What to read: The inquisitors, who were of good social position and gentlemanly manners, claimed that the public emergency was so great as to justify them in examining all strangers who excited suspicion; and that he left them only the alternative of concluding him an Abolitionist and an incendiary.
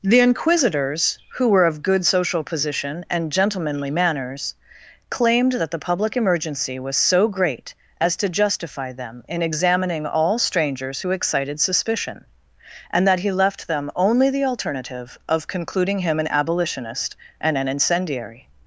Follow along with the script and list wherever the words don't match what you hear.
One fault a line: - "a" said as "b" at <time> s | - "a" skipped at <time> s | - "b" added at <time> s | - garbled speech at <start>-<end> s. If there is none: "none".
none